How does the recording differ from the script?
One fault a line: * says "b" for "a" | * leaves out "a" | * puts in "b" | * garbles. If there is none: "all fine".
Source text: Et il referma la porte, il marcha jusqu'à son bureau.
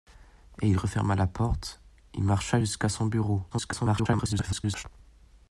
* garbles